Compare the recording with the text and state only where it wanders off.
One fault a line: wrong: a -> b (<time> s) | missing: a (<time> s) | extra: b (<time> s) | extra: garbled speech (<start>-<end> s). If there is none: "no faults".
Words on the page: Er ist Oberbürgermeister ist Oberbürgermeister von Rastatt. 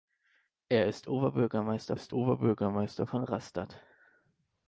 no faults